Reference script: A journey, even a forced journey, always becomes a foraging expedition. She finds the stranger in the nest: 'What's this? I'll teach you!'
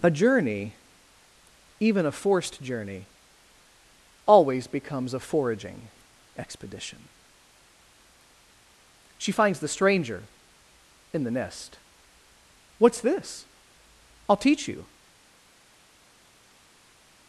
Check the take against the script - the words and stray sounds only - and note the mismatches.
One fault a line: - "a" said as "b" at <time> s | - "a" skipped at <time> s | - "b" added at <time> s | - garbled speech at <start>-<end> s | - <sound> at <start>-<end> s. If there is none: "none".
none